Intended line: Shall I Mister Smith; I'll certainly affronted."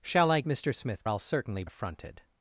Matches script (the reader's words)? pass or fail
pass